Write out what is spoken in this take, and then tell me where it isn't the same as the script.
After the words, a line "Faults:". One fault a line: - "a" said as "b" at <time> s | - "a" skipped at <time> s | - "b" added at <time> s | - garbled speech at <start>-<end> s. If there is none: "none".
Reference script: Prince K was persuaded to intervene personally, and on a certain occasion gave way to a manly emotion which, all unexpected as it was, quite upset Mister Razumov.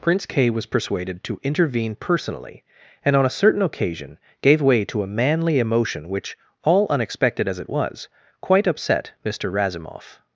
Prince K was persuaded to intervene personally, and on a certain occasion gave way to a manly emotion which, all unexpected as it was, quite upset Mister Razumov.
Faults:
none